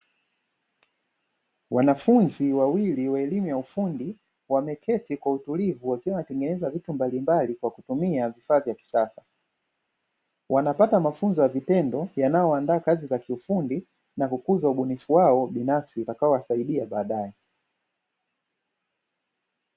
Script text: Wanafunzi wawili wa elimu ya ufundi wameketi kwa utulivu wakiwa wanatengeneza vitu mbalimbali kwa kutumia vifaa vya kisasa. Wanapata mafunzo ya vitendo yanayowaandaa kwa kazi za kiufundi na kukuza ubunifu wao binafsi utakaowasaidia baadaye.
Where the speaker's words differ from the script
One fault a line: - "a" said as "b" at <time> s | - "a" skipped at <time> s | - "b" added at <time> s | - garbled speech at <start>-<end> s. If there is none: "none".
- "kwa" skipped at 12.8 s